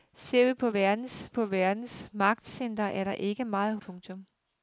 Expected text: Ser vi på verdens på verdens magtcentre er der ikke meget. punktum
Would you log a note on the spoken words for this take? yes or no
no